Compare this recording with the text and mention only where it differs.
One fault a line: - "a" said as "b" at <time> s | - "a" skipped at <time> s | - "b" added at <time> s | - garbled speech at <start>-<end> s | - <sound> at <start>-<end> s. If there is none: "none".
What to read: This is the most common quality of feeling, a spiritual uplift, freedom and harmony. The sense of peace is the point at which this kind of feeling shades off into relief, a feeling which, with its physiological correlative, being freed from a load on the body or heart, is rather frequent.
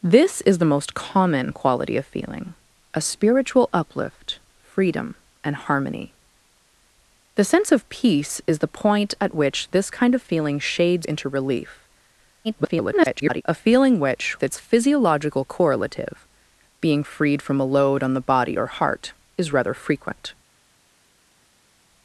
- "off" skipped at 11.1 s
- garbled speech at 12.4-13.4 s
- "with" skipped at 14.4 s